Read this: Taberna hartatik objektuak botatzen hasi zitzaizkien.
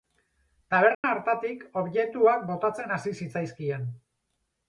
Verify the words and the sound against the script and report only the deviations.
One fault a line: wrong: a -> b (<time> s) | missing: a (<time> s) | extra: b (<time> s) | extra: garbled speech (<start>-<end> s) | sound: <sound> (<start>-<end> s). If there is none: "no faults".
sound: dropout (0.9-1.0 s)